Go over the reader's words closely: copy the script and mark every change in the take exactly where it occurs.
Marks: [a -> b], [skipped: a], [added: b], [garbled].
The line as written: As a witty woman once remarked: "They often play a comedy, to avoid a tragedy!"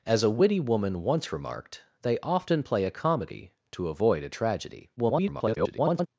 As a witty woman once remarked: "They often play a comedy, to avoid a tragedy!" [garbled]